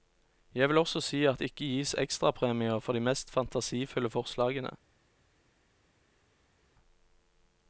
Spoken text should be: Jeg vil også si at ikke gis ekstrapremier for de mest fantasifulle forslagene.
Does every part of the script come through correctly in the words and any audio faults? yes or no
no